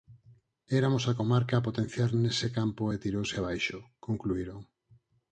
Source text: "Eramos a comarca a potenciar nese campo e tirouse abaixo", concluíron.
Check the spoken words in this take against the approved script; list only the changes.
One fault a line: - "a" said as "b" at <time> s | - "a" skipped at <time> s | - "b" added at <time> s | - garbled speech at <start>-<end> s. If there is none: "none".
none